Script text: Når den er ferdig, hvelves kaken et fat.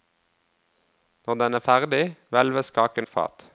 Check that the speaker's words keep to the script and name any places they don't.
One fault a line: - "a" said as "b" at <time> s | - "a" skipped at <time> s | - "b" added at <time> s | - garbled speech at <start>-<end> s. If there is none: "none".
none